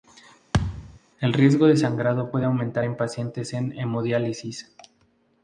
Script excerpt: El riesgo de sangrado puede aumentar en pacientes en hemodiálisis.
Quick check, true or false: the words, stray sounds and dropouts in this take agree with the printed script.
false